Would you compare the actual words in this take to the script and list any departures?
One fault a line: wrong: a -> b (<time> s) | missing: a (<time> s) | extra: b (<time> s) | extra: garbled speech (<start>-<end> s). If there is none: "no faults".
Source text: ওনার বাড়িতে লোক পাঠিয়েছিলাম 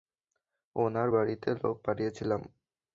no faults